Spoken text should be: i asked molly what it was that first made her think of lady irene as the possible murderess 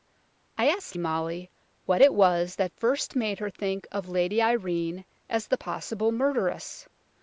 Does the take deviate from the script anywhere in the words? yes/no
no